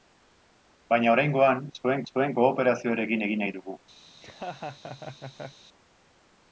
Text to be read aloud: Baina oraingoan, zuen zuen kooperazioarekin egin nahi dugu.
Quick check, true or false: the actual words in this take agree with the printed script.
true